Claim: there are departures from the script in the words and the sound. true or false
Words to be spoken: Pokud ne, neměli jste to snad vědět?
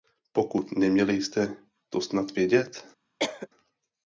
true